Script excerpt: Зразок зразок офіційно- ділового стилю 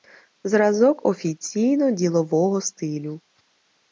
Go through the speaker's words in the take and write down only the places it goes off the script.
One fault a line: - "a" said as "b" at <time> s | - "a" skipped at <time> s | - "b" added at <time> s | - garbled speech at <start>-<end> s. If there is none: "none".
- "зразок" skipped at 1.1 s